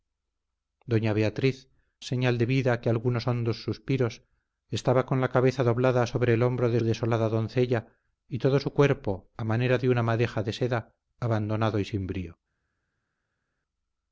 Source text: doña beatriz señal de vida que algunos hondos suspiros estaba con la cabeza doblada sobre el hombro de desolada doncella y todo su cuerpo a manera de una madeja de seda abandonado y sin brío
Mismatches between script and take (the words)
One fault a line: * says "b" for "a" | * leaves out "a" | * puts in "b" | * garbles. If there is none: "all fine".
all fine